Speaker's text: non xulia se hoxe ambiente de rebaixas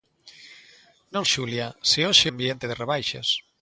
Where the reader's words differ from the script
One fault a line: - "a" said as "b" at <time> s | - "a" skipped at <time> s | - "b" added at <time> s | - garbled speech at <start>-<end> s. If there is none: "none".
none